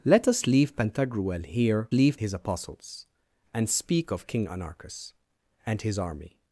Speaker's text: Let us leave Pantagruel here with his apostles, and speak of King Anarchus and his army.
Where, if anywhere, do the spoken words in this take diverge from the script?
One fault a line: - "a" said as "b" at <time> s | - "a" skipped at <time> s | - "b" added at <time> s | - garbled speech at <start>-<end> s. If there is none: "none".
- "with" said as "leave" at 1.9 s